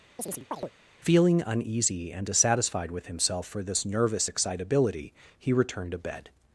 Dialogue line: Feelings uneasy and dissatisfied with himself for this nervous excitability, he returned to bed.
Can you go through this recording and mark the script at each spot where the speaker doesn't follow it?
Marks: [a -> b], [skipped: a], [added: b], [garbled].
[Feelings -> Feeling] uneasy and dissatisfied with himself for this nervous excitability, he returned to bed.